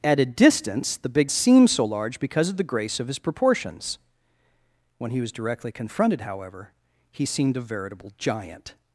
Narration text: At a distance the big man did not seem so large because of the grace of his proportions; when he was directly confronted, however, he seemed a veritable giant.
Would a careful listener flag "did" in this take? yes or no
yes